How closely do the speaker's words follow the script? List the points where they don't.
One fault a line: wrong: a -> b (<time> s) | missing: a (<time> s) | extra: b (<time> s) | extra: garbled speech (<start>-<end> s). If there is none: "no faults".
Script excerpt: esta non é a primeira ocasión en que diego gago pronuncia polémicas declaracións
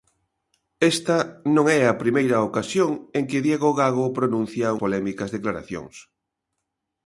no faults